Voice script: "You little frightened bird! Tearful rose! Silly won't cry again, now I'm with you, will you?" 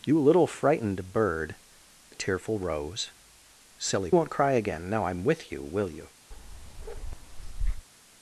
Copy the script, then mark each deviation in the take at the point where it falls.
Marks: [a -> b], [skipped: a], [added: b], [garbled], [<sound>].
"You little frightened bird! Tearful rose! Silly won't cry again, now I'm with you, will you?" [bark]